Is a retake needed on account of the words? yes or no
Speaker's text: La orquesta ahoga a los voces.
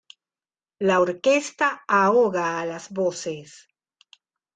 yes